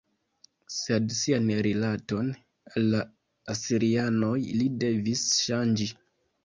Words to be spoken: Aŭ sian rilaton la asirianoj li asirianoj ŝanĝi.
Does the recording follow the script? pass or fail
fail